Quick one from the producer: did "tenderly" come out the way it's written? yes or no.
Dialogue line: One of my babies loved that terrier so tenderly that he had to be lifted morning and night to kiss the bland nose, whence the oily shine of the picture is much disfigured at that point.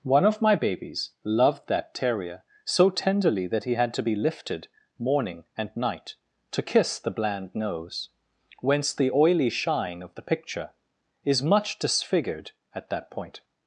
yes